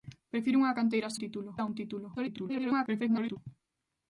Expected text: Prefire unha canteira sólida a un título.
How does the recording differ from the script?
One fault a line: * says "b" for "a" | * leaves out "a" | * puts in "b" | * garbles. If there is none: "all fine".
* says "título" for "sólida"
* garbles